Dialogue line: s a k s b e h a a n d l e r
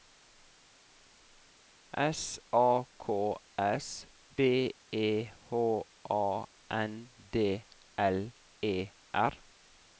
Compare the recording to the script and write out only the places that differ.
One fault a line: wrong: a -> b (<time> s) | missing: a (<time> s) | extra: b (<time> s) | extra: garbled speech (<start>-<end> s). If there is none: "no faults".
missing: a (6.5 s)